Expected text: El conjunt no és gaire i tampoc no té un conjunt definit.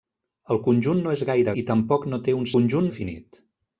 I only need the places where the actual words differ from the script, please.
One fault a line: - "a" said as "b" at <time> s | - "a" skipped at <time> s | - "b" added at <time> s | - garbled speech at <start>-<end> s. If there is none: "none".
none